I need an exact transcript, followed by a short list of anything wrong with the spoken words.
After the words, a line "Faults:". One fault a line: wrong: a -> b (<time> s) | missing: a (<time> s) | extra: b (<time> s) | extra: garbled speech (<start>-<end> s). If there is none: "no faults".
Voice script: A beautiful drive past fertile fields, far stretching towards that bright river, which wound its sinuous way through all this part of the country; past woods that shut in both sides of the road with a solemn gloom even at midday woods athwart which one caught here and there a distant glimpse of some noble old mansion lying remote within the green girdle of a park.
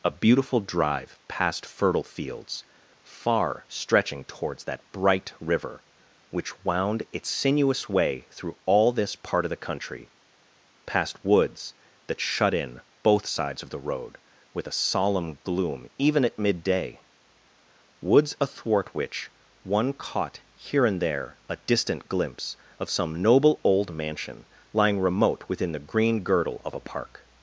A beautiful drive past fertile fields, far stretching towards that bright river, which wound its sinuous way through all this part of the country; past woods that shut in both sides of the road with a solemn gloom even at midday woods athwart which one caught here and there a distant glimpse of some noble old mansion lying remote within the green girdle of a park.
Faults:
no faults